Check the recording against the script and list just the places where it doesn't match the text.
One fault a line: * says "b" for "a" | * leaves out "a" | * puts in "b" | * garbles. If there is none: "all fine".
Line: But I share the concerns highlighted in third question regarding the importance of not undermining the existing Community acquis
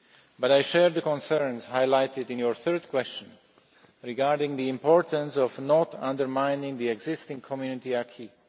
* puts in "your"